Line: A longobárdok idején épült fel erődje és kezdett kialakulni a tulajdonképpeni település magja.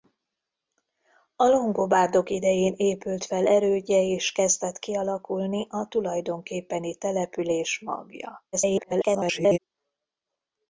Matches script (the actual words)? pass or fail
fail